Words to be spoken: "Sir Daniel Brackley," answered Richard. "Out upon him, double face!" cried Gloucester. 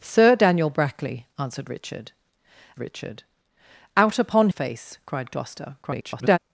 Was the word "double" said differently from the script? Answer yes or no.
yes